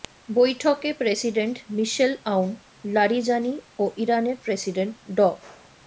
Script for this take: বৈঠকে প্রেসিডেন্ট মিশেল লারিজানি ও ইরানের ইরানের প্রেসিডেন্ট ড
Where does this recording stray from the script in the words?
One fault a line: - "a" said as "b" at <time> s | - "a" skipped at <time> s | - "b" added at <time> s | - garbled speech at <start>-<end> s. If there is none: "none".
- "আউন" added at 2.3 s
- "ইরানের" skipped at 4.4 s